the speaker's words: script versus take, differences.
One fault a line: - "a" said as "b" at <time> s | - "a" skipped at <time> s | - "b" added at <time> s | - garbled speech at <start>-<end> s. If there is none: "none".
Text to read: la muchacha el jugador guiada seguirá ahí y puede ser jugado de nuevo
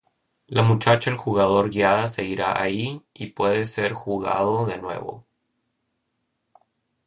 none